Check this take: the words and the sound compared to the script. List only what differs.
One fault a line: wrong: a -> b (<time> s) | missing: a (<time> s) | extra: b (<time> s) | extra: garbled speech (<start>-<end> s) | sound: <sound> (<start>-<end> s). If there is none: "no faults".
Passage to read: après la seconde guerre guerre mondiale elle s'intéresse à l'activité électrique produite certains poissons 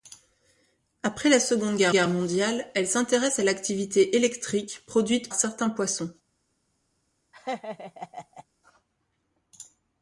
sound: laugh (7.3-8.4 s)